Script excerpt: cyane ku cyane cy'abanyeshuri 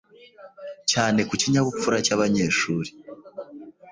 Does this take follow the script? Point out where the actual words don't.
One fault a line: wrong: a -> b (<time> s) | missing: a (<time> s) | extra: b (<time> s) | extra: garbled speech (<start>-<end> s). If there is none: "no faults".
wrong: cyane -> kinyabupfura (1.4 s)